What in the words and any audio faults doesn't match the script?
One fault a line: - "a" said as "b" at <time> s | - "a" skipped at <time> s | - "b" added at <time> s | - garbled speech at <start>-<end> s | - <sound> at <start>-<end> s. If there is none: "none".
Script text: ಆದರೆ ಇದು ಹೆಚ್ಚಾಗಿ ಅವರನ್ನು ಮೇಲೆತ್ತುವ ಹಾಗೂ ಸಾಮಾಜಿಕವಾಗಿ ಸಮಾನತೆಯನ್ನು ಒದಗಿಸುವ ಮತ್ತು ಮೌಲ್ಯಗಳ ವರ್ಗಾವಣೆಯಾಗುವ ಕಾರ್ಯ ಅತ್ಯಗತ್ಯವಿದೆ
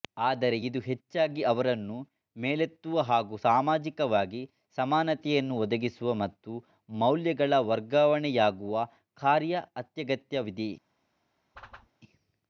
- whoosh at 11.5-11.9 s